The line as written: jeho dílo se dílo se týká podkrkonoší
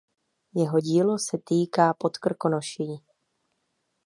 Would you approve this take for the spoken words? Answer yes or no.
no